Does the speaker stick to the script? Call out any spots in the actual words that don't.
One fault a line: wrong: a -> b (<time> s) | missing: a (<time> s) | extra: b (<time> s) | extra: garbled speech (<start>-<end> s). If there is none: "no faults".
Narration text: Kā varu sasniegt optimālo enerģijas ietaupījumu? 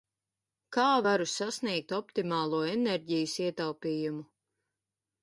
no faults